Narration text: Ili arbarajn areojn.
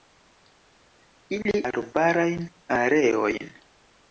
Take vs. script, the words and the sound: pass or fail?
pass